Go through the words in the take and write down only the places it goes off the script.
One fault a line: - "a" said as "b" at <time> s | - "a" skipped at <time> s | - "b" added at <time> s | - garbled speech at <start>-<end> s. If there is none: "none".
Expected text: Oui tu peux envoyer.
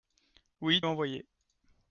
- "tu peux" skipped at 0.8 s